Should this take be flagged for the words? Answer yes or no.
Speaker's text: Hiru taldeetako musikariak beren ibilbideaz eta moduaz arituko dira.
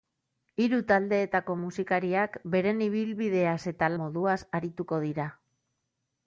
no